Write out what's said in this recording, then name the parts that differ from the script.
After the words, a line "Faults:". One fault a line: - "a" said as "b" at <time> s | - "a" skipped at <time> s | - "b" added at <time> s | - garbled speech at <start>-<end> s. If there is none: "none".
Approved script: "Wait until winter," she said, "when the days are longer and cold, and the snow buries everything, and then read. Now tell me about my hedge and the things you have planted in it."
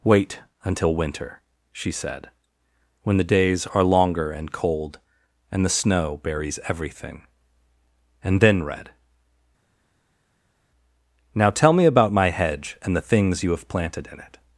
"Wait until winter," she said, "when the days are longer and cold, and the snow buries everything, and then read. Now tell me about my hedge and the things you have planted in it."
Faults:
none